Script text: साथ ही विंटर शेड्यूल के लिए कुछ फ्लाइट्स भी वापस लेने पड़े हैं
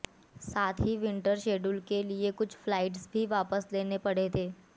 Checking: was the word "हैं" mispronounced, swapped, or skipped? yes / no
yes